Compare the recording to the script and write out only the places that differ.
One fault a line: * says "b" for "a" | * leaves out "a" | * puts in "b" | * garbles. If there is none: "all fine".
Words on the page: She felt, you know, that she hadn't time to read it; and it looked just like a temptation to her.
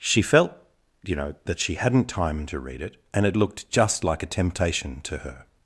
all fine